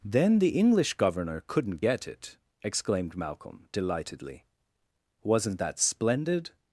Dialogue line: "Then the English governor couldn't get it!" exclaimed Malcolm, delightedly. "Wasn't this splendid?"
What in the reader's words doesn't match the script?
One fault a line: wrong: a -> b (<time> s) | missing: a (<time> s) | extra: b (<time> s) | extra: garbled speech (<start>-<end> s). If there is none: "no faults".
wrong: this -> that (5.6 s)